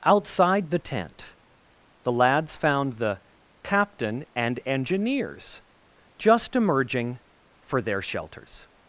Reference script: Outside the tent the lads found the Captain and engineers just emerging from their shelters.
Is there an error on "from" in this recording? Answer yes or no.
yes